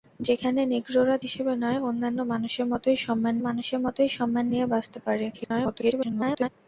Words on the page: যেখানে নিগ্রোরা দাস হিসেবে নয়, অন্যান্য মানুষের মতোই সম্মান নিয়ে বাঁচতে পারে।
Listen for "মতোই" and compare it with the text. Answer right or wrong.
right